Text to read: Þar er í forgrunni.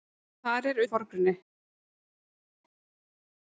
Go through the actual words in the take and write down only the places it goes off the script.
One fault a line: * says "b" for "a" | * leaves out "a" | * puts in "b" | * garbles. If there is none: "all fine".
all fine